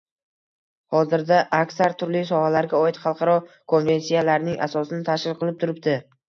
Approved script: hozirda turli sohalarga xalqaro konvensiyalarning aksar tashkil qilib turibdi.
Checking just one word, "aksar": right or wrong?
wrong